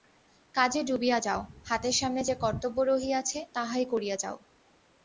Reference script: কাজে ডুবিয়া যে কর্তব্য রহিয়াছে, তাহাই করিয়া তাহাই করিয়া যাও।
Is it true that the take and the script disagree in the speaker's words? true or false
true